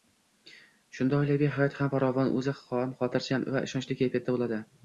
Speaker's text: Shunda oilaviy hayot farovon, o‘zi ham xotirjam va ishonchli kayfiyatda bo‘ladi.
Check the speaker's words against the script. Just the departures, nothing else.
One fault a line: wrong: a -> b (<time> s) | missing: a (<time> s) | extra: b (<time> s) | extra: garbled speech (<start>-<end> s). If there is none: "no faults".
extra: ham (1.8 s)